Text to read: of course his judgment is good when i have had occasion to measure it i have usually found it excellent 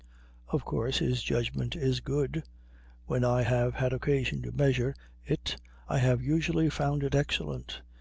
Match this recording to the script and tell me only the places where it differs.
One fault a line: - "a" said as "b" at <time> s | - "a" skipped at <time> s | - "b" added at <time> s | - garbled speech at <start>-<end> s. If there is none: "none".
none